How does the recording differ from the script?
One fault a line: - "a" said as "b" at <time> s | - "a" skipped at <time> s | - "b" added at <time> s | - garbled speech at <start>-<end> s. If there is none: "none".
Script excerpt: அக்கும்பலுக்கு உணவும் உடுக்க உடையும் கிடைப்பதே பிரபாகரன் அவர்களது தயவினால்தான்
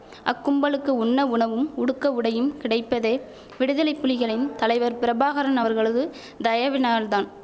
- "உண்ண" added at 1.0 s
- "விடுதலை புலிகளின் தலைவர்" added at 3.6 s